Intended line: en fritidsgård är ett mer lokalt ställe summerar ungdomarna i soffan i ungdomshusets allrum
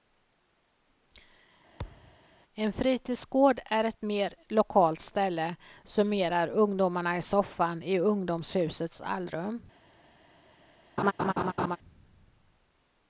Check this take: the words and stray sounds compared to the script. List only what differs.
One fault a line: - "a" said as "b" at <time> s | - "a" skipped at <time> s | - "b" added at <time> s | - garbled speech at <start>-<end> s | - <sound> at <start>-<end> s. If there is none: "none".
- thud at 1.8-2.2 s
- laugh at 11.0-11.8 s